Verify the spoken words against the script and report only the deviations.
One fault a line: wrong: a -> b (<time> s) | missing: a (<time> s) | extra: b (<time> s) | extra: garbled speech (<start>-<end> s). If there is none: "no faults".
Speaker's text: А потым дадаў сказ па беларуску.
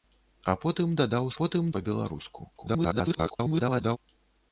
wrong: сказ -> потым (1.4 s)
extra: garbled speech (2.6-4.0 s)